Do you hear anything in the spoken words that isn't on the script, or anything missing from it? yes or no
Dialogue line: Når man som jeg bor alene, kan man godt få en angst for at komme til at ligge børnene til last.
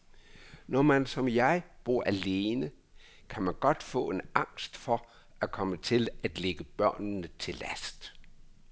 no